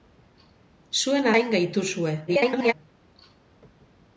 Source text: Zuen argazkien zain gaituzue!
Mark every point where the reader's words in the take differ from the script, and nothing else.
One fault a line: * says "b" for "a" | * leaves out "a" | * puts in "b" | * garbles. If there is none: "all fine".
* leaves out "argazkien"
* garbles